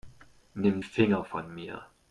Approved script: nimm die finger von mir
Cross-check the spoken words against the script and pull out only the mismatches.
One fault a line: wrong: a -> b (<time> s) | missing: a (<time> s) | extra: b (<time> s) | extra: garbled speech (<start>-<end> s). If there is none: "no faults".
missing: die (0.8 s)